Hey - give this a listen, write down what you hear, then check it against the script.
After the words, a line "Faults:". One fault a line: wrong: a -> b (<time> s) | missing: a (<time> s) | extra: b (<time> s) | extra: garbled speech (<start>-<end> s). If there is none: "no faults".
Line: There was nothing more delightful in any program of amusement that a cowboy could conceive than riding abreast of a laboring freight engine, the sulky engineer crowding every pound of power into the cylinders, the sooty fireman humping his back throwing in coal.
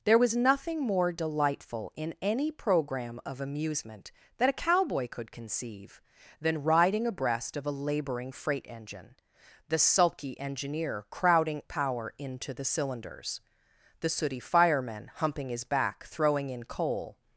There was nothing more delightful in any program of amusement that a cowboy could conceive than riding abreast of a laboring freight engine, the sulky engineer crowding power into the cylinders, the sooty fireman humping his back throwing in coal.
Faults:
missing: every pound of (11.6 s)